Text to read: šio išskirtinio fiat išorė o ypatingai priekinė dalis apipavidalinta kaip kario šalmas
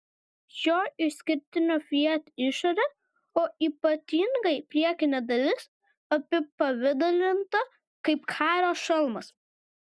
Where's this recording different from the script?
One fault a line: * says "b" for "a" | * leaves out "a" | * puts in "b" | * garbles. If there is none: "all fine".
all fine